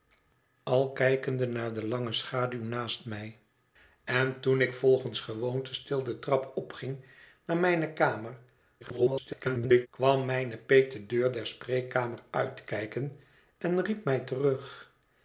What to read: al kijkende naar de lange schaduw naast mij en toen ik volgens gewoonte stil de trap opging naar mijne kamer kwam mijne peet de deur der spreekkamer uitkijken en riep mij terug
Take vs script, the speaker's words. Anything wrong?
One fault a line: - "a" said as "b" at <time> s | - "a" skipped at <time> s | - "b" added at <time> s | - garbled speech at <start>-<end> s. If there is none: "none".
- garbled speech at 8.8-9.9 s